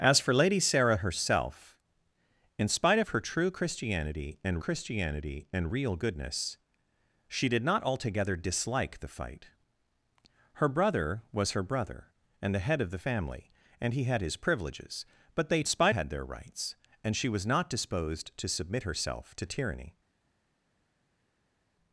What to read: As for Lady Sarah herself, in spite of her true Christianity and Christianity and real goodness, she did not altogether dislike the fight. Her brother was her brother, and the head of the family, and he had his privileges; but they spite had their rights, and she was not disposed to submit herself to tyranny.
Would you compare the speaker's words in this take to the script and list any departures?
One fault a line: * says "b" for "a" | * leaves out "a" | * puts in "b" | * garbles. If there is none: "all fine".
all fine